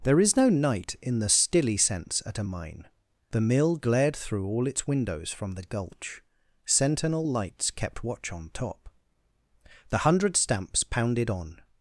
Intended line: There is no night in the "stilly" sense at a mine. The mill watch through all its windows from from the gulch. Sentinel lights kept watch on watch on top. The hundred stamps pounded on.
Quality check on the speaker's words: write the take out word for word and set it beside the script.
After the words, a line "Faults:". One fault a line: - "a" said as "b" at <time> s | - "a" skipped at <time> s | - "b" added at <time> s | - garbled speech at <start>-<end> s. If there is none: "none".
There is no night in the "stilly" sense at a mine. The mill glared through all its windows from the gulch. Sentinel lights kept watch on top. The hundred stamps pounded on.
Faults:
- "watch" said as "glared" at 3.8 s
- "from" skipped at 5.6 s
- "watch on" skipped at 8.5 s